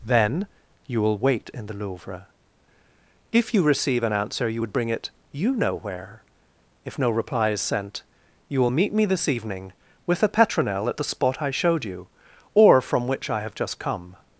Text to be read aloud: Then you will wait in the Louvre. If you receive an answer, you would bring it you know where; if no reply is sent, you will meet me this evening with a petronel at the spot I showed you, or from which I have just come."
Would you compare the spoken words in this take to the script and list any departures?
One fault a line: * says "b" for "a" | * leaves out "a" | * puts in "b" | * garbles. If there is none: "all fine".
all fine